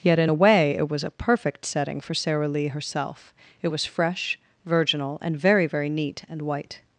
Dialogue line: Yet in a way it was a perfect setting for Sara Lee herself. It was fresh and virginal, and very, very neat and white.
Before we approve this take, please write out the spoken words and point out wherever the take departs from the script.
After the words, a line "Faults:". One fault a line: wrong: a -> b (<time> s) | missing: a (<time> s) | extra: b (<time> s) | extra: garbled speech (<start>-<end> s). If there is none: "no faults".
Yet in a way it was a perfect setting for Sara Lee herself. It was fresh virginal, and very, very neat and white.
Faults:
missing: and (4.4 s)